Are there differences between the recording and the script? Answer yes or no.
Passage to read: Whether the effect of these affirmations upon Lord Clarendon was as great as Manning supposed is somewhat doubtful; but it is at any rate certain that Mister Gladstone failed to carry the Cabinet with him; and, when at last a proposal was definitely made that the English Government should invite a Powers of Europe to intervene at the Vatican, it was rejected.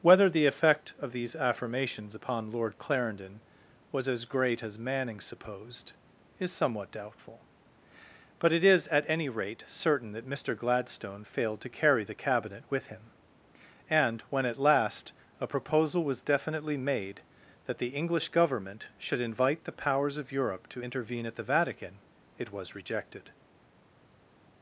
yes